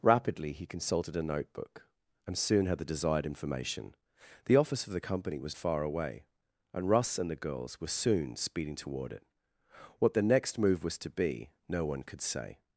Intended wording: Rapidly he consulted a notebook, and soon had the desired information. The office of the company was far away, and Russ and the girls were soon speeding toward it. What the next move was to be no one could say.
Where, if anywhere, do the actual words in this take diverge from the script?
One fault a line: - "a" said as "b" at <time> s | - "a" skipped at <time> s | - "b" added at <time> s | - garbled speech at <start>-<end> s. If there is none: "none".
none